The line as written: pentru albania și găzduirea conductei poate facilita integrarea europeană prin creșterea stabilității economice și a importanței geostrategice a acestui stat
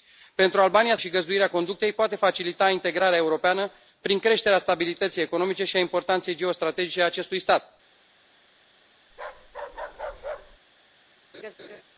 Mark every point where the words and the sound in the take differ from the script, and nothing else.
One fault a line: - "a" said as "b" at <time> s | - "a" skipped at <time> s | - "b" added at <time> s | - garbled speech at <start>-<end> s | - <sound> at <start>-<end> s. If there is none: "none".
- bark at 9.1-10.6 s
- laugh at 11.3-11.8 s